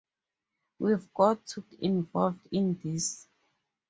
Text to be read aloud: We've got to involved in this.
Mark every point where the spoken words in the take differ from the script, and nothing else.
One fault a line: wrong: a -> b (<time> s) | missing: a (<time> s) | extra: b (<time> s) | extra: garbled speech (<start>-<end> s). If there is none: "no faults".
no faults